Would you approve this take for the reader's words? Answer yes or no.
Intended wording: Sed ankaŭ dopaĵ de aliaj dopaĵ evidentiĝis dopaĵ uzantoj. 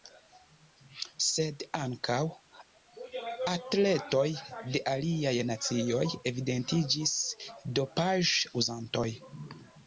no